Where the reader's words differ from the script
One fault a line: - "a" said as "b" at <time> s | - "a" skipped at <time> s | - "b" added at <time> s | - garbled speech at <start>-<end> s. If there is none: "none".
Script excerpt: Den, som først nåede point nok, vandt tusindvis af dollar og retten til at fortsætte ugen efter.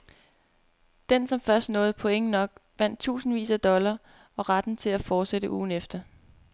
none